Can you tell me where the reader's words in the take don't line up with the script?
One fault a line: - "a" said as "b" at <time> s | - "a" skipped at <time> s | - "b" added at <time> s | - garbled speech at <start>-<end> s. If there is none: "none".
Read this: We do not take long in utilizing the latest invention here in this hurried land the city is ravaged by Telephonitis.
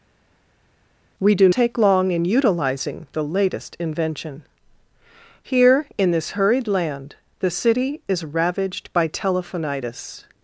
- "not" skipped at 1.5 s